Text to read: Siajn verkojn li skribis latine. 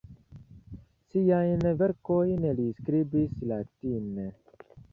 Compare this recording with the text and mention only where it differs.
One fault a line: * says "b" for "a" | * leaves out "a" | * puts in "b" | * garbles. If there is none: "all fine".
all fine